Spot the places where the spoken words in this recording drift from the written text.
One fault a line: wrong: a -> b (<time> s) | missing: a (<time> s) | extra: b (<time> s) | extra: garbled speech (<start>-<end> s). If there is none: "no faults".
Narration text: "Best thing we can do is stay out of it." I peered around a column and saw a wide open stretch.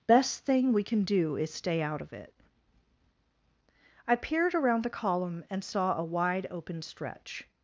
wrong: a -> the (4.8 s)